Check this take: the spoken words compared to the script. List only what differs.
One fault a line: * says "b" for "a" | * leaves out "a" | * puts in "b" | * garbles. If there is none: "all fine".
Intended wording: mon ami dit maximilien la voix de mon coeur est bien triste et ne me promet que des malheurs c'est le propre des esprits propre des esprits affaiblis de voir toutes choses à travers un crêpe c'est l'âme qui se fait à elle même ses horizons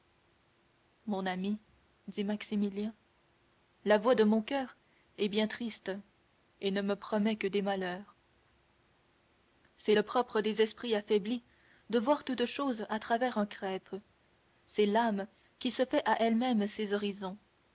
* leaves out "propre des esprits"